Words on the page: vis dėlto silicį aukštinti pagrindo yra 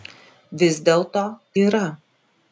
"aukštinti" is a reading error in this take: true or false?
true